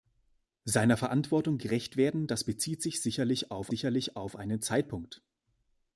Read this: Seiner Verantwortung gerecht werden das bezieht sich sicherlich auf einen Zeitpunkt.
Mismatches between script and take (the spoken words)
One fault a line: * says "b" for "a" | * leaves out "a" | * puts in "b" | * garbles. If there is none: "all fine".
* puts in "sicherlich auf"